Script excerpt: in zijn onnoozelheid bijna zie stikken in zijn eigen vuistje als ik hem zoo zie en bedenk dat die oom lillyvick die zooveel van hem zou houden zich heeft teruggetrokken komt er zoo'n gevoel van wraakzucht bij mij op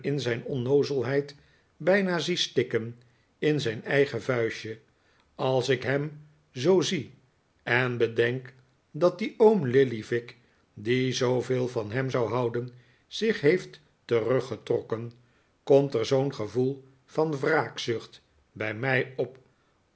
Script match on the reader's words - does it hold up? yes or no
yes